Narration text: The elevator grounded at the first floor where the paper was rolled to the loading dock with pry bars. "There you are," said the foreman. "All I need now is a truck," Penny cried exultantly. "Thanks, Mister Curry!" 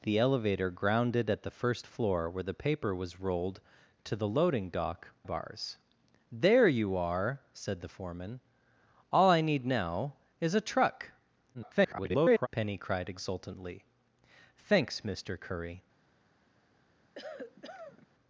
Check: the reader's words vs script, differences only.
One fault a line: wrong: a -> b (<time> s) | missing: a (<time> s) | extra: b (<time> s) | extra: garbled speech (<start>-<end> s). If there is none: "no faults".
missing: with pry (5.1 s)
extra: garbled speech (11.5-12.5 s)